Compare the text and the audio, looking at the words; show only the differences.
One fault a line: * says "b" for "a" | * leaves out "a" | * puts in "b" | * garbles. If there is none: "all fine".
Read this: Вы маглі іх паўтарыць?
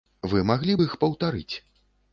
* puts in "б"